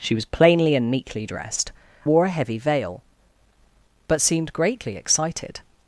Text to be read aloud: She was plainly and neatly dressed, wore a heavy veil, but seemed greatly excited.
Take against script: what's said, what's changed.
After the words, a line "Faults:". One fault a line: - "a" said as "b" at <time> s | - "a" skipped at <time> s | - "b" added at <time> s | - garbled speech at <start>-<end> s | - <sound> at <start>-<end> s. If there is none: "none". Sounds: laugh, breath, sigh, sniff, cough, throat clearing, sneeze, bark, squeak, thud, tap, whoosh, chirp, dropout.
She was plainly and neatly dressed, wore a heavy veil, but seemed greatly excited.
Faults:
none